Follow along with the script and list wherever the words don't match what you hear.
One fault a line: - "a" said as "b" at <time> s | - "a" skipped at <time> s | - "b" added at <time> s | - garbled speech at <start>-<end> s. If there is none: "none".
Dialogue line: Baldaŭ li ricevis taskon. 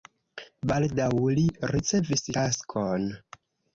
none